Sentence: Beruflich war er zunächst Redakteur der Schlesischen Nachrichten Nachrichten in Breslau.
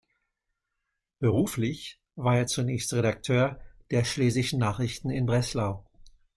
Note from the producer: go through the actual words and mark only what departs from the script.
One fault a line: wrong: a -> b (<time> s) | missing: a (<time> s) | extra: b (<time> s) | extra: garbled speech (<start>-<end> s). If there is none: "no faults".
missing: Nachrichten (5.1 s)